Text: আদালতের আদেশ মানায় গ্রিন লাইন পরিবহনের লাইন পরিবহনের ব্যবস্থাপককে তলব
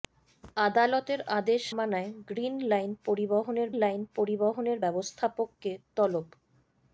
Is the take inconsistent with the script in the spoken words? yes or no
no